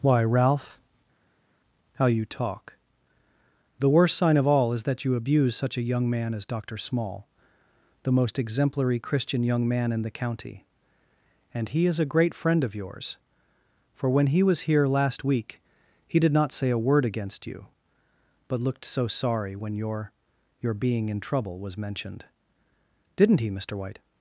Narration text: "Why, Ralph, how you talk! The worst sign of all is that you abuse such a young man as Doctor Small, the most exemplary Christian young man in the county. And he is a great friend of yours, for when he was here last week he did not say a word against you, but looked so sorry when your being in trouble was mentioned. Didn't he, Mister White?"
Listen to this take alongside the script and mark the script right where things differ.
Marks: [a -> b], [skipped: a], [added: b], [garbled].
"Why, Ralph, how you talk! The worst sign of all is that you abuse such a young man as Doctor Small, the most exemplary Christian young man in the county. And he is a great friend of yours, for when he was here last week he did not say a word against you, but looked so sorry when your [added: your] being in trouble was mentioned. Didn't he, Mister White?"